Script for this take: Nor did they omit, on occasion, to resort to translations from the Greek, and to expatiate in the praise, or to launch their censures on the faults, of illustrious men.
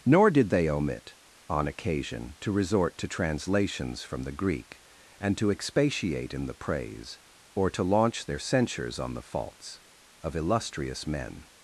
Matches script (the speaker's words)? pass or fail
pass